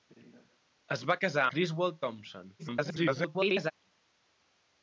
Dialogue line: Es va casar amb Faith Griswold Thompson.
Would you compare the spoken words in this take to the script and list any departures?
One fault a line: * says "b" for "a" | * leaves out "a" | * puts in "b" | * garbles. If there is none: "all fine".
* leaves out "amb Faith"
* garbles